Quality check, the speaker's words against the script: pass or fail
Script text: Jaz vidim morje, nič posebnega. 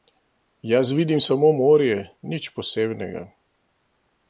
fail